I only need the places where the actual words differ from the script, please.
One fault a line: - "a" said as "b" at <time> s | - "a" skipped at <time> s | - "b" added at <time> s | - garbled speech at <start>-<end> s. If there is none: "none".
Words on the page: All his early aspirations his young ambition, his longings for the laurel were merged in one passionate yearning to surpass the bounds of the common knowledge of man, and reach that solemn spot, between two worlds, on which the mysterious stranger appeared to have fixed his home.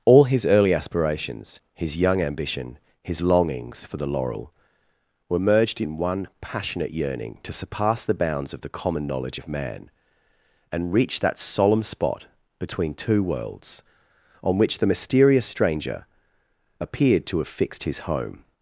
none